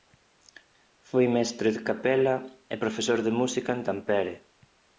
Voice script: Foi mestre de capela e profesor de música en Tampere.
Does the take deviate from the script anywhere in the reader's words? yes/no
no